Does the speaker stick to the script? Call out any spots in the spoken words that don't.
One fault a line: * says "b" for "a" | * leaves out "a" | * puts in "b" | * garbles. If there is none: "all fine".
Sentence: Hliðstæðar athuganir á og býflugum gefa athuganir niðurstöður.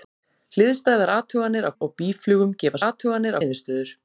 all fine